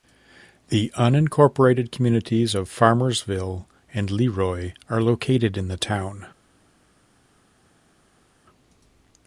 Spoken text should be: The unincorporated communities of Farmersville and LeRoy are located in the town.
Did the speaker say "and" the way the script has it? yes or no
yes